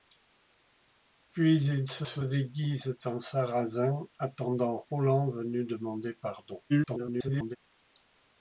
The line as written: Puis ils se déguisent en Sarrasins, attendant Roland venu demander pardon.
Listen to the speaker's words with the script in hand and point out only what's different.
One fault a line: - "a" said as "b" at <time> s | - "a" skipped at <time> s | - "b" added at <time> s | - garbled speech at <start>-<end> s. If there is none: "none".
- "se" added at 2.1 s
- garbled speech at 6.7-7.6 s